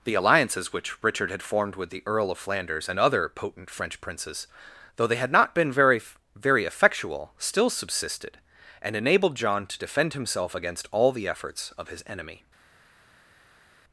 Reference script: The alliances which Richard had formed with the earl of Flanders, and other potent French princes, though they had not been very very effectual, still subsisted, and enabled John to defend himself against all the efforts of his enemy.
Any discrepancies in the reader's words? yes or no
no